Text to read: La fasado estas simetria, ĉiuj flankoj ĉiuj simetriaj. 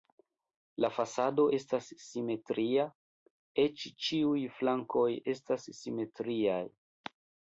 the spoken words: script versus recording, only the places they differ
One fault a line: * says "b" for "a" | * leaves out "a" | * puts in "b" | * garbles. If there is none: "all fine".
* puts in "eĉ"
* says "estas" for "ĉiuj"